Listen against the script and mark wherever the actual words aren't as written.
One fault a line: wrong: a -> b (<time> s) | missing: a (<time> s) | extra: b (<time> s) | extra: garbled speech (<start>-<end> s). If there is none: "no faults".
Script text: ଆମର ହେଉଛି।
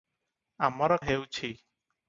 no faults